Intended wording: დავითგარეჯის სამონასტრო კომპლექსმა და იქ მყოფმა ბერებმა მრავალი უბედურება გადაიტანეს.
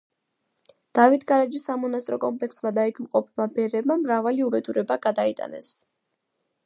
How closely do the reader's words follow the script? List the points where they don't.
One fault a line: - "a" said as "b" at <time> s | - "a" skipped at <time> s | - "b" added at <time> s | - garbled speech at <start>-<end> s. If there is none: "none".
none